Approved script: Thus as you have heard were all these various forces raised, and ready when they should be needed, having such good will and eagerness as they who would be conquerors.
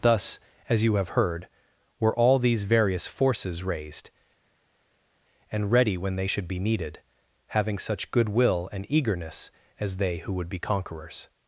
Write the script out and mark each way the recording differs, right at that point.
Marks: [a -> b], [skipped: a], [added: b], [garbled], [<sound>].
Thus as you have heard were all these various forces raised, and ready when they should be needed, having such good will and eagerness as they who would be conquerors.